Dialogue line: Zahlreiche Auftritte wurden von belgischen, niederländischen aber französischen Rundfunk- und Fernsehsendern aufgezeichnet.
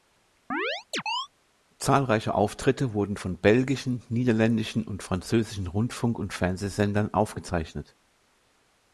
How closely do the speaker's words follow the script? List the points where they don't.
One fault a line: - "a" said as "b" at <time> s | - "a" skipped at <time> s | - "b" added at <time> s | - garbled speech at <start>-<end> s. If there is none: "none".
- "aber" said as "und" at 4.8 s